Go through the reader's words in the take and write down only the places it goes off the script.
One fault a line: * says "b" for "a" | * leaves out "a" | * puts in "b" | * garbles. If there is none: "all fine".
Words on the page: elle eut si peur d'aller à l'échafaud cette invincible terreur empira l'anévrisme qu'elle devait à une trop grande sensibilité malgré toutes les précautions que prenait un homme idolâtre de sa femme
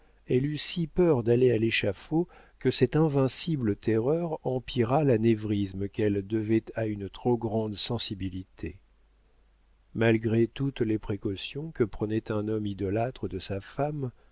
* puts in "que"